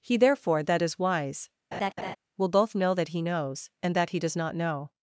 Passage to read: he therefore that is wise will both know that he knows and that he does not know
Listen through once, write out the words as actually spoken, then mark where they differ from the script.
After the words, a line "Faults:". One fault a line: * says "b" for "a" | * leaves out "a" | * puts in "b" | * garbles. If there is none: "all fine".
he therefore that is wise will both know that he knows and that he does not know
Faults:
all fine